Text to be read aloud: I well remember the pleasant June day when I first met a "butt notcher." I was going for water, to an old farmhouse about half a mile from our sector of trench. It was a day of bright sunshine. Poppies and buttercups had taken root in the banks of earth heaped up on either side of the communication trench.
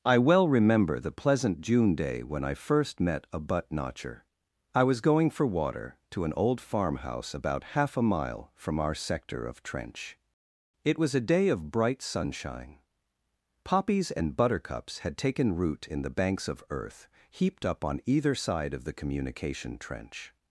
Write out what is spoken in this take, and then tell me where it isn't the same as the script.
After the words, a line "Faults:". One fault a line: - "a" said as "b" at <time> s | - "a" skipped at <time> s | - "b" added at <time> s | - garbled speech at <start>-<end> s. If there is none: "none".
I well remember the pleasant June day when I first met a "butt notcher." I was going for water, to an old farmhouse about half a mile from our sector of trench. It was a day of bright sunshine. Poppies and buttercups had taken root in the banks of earth heaped up on either side of the communication trench.
Faults:
none